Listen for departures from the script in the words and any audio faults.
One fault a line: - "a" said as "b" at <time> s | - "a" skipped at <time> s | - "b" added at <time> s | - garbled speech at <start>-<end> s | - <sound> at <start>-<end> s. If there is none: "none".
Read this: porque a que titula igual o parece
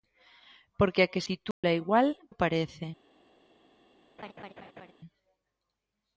- dropout at 1.5-1.6 s
- laugh at 4.2-4.9 s